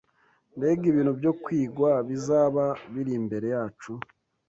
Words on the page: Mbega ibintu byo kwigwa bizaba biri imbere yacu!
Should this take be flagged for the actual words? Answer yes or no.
no